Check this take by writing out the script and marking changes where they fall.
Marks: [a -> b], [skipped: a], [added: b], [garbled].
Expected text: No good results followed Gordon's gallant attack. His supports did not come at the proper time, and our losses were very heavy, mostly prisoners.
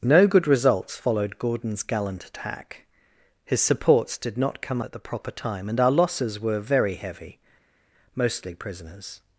No good results followed Gordon's gallant attack. His supports did not come at the proper time, and our losses were very heavy, mostly prisoners.